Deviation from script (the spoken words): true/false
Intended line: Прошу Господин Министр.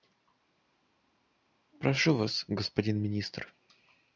true